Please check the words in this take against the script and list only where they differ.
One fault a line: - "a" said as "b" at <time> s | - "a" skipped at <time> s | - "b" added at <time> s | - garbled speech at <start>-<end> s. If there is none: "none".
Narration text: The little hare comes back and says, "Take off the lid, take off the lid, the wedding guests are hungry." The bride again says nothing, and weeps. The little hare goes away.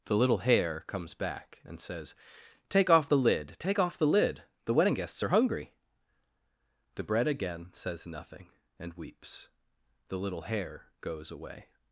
- "bride" said as "bread" at 7.0 s